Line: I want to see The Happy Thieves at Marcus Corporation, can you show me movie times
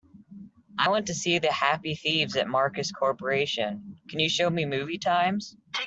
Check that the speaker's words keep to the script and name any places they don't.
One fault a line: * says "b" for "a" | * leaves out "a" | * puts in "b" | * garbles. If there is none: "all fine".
all fine